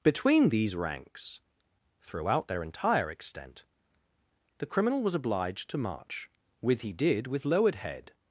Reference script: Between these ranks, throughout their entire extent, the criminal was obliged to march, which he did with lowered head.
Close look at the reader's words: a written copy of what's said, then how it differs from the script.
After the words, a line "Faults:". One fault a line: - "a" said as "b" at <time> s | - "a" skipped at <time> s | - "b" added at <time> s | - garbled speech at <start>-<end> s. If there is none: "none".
Between these ranks, throughout their entire extent, the criminal was obliged to march, with he did with lowered head.
Faults:
- "which" said as "with" at 6.6 s